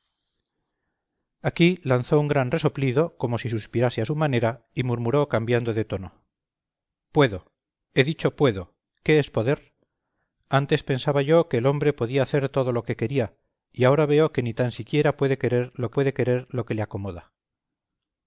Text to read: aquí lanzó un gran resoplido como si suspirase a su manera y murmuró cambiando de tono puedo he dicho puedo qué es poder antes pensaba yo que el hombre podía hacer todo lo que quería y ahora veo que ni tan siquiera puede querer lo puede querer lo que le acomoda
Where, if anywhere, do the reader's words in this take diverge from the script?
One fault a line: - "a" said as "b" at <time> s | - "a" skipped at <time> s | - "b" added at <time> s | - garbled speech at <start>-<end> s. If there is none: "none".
none